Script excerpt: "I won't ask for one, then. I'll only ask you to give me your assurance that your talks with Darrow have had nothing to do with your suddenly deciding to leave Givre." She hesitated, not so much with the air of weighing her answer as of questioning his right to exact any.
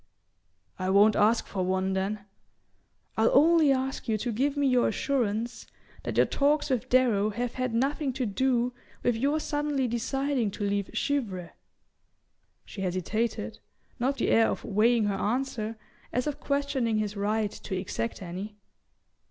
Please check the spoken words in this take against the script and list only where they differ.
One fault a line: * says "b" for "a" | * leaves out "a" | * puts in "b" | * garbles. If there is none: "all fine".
* leaves out "so much with"